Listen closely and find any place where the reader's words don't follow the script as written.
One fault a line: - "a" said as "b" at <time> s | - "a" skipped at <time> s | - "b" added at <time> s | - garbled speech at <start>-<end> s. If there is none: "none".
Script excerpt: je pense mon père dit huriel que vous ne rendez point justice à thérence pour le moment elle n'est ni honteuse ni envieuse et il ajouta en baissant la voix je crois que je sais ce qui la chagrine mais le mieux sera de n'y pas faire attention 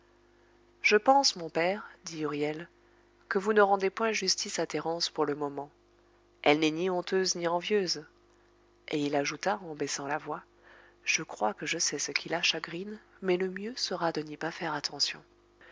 none